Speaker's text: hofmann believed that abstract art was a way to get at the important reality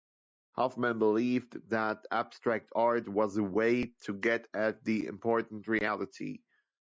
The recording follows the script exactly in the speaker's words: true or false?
true